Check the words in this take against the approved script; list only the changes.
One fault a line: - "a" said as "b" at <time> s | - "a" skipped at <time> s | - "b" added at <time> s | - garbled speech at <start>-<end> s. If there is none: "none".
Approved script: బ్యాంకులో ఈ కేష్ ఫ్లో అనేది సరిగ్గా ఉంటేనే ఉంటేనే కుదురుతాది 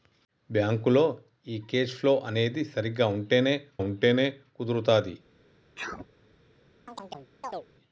none